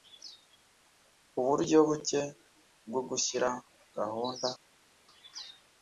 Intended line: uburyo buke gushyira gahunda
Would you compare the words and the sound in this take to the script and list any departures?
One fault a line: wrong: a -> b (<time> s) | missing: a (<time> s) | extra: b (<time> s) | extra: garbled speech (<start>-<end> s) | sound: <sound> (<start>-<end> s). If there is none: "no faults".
extra: bwo (2.9 s)